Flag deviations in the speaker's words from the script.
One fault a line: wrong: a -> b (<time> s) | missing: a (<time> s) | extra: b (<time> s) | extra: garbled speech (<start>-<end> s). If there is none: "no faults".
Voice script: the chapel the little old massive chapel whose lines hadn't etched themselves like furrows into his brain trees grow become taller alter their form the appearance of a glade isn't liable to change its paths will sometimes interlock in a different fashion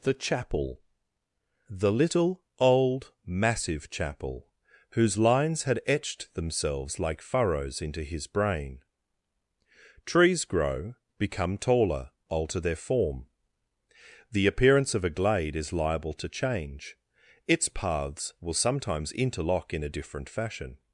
wrong: hadn't -> had (5.6 s)
wrong: isn't -> is (15.6 s)